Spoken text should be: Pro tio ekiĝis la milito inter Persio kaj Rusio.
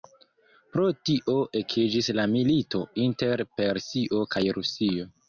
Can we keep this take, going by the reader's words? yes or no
yes